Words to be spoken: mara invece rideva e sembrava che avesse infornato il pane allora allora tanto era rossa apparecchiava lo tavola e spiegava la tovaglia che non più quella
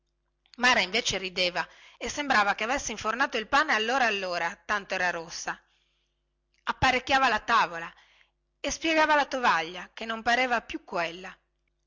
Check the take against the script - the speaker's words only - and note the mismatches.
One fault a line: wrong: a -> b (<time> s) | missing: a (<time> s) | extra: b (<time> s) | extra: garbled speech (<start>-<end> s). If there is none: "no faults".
wrong: lo -> la (7.3 s)
extra: pareva (10.2 s)